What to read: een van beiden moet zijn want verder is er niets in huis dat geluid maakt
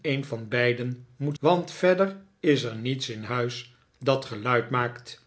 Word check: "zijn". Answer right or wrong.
wrong